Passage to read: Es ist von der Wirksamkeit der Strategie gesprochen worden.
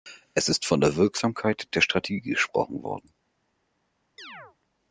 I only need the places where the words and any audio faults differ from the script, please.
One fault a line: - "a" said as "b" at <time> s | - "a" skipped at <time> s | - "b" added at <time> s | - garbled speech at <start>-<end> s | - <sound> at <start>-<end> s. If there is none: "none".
- chirp at 4.2-4.6 s